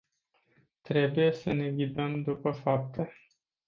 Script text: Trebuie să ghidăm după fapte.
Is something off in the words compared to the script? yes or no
yes